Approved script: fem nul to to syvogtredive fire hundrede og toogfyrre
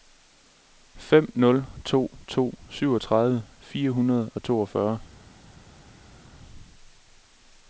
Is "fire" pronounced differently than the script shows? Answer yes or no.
no